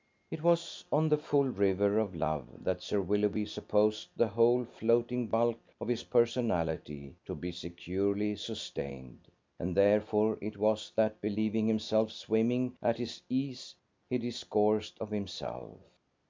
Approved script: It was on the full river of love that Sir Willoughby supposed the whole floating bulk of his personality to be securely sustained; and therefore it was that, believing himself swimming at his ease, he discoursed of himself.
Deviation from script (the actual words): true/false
false